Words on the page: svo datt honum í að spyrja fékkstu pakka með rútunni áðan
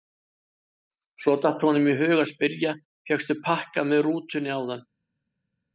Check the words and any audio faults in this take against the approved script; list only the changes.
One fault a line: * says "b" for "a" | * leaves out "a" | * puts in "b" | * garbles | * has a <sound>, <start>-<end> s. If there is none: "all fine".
* puts in "hug"